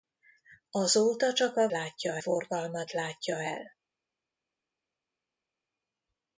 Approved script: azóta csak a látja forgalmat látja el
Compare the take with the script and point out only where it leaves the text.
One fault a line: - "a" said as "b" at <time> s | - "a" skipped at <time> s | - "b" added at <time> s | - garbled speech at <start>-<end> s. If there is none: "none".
none